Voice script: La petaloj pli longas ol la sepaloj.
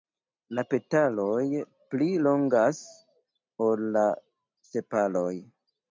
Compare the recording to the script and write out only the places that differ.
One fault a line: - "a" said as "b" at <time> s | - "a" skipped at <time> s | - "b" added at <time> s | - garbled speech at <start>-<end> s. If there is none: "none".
none